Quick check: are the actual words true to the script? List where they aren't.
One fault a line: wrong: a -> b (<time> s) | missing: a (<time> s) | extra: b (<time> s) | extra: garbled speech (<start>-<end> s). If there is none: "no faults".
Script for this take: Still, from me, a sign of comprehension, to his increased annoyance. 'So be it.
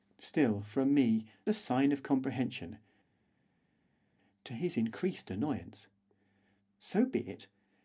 no faults